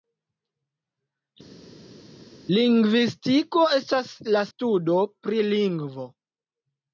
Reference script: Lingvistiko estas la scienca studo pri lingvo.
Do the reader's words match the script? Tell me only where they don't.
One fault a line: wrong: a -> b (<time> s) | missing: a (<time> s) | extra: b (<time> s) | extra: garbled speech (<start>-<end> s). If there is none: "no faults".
missing: scienca (4.4 s)